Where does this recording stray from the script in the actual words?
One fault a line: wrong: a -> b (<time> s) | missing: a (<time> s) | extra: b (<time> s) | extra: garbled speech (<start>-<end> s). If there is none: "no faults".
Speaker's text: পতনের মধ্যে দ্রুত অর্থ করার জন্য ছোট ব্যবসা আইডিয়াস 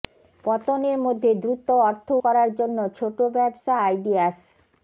no faults